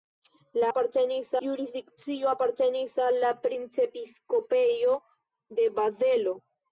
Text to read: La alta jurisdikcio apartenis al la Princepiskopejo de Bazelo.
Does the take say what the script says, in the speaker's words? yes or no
no